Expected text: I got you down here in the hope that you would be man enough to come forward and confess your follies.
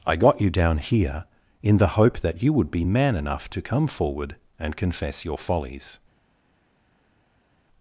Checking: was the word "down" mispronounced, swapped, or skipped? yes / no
no